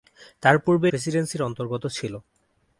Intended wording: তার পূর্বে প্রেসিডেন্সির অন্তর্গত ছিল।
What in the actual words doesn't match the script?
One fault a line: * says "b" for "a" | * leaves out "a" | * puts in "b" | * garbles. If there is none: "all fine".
all fine